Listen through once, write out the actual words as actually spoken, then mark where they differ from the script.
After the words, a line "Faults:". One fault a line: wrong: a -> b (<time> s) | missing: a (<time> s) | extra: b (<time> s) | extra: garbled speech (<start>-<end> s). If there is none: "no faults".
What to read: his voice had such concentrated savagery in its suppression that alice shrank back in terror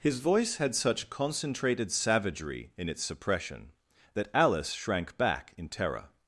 his voice had such concentrated savagery in its suppression that alice shrank back in terror
Faults:
no faults